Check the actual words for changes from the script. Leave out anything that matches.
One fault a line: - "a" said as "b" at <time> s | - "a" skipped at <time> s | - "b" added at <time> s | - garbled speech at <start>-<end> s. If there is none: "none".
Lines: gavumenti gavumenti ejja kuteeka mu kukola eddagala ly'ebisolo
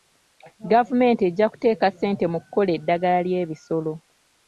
- "gavumenti" skipped at 1.2 s
- "ssente" added at 1.9 s